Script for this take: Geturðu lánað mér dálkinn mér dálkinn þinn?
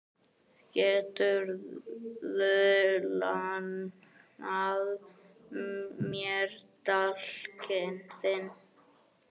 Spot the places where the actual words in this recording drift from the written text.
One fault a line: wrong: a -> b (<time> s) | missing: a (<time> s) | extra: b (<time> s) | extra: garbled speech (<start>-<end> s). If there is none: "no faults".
missing: mér dálkinn (8.0 s)